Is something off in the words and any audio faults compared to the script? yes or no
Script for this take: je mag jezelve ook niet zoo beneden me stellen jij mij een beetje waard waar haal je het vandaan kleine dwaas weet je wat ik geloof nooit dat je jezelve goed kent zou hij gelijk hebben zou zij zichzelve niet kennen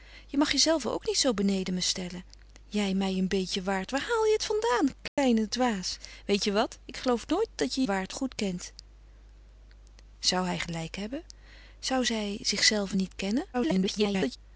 yes